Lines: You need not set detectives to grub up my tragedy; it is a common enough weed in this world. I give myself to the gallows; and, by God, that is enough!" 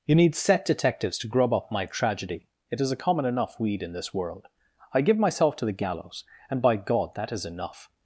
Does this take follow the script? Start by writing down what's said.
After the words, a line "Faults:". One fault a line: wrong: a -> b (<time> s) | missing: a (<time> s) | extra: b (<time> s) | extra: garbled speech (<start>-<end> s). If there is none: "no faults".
You need set detectives to grub up my tragedy; it is a common enough weed in this world. I give myself to the gallows; and, by God, that is enough!"
Faults:
missing: not (0.3 s)